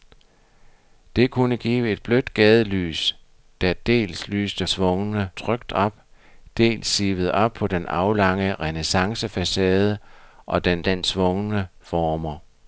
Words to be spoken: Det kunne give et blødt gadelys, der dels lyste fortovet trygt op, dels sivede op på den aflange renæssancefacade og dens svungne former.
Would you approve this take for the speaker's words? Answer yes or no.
no